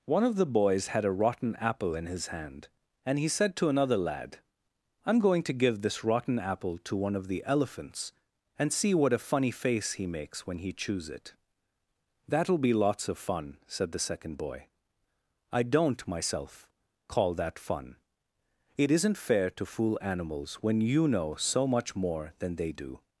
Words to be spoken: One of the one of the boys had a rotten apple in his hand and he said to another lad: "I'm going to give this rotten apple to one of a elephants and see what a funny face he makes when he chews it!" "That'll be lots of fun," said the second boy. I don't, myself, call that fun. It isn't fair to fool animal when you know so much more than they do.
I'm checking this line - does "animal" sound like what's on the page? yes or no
no